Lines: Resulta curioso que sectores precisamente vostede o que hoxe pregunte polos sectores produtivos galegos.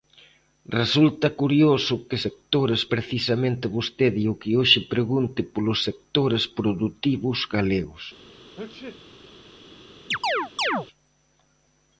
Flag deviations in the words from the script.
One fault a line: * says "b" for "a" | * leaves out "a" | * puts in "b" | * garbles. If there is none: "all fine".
all fine